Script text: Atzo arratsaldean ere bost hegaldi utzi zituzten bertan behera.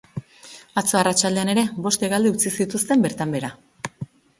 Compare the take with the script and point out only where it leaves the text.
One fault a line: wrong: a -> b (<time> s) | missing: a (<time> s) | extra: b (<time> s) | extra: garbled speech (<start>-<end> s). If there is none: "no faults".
no faults